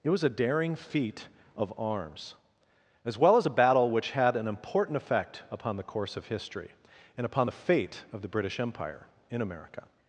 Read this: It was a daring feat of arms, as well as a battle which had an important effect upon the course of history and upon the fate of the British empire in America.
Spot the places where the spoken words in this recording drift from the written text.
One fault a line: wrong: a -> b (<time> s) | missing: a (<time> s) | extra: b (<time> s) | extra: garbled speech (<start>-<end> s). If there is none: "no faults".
no faults